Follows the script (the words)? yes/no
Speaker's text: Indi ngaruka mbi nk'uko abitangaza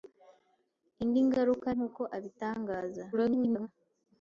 no